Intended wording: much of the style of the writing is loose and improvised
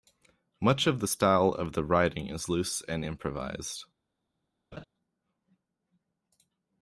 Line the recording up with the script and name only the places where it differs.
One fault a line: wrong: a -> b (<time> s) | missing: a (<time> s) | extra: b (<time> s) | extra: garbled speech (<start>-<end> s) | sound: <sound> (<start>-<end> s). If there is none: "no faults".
sound: laugh (4.7-4.8 s)